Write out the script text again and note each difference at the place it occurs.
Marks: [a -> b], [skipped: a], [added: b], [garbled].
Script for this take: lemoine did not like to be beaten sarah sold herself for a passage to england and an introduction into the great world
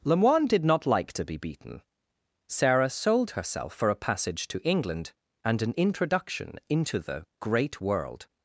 lemoine did not like to be beaten sarah sold herself for a passage to england and an introduction into the great world